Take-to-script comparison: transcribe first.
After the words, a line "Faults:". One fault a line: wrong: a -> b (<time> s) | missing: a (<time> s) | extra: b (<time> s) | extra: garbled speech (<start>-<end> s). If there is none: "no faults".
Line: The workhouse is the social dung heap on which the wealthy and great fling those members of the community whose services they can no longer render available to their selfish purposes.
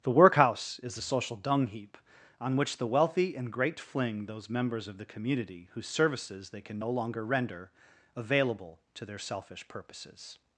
The workhouse is the social dung heap on which the wealthy and great fling those members of the community whose services they can no longer render available to their selfish purposes.
Faults:
no faults